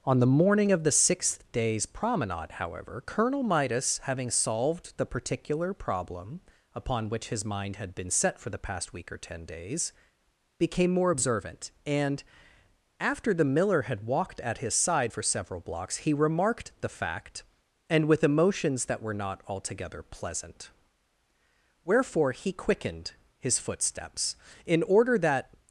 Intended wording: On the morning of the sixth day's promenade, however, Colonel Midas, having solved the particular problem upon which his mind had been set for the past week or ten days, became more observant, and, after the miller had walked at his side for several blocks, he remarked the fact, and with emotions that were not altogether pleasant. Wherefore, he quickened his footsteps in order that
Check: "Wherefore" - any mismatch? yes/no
no